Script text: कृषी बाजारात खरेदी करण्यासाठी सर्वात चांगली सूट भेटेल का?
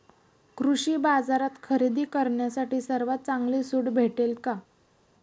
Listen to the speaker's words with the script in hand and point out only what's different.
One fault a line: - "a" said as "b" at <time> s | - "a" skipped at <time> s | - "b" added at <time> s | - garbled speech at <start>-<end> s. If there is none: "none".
none